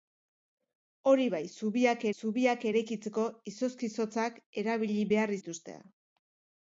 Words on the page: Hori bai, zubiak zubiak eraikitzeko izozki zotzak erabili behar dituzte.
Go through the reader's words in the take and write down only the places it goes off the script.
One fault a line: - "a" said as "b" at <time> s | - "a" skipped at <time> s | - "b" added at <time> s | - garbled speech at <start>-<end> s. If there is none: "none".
none